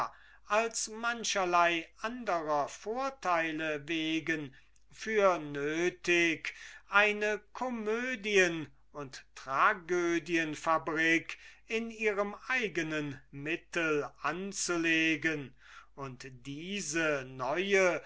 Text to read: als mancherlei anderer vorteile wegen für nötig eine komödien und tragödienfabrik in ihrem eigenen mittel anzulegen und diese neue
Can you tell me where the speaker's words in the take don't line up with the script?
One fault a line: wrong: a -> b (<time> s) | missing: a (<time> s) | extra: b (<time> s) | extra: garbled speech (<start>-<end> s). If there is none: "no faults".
no faults